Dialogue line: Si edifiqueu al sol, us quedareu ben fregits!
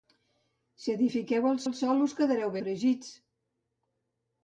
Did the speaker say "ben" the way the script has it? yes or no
no